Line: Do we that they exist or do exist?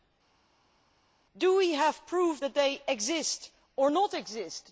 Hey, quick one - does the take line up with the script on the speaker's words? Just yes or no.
no